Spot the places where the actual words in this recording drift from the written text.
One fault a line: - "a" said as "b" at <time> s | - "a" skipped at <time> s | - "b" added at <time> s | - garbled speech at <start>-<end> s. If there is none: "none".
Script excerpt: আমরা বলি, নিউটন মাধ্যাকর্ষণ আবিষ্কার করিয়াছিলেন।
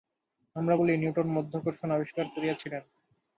none